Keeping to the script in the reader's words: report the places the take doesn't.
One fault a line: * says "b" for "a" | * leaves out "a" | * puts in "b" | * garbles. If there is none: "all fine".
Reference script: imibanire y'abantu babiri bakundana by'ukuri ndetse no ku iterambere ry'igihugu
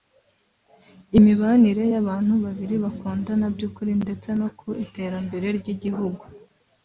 all fine